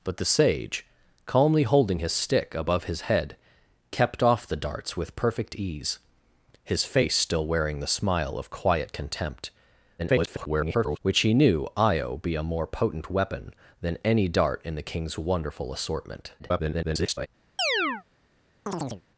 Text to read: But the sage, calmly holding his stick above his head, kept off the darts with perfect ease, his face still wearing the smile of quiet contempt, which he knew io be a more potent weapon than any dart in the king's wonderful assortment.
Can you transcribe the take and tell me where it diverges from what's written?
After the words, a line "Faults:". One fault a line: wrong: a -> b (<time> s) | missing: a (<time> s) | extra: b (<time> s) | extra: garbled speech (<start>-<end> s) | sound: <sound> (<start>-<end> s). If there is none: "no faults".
But the sage, calmly holding his stick above his head, kept off the darts with perfect ease, his face still wearing the smile of quiet contempt, [garbled] which he knew io be a more potent weapon than any dart in the king's wonderful assortment. [garbled]
Faults:
extra: garbled speech (10.0-11.0 s)
extra: garbled speech (16.4-17.3 s)
sound: chirp (17.6-18.0 s)
sound: chirp (18.7-19.0 s)